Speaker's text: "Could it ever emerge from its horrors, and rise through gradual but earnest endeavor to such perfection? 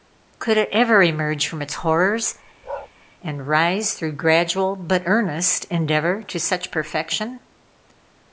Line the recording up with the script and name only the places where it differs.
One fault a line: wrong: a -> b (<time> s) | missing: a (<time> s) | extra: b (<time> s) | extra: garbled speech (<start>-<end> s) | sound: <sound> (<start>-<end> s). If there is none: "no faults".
sound: bark (2.6-2.9 s)